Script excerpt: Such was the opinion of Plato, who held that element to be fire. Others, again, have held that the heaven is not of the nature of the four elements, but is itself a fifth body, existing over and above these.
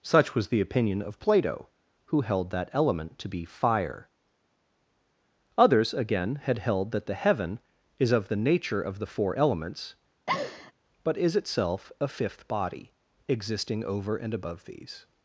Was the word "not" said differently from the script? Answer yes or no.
yes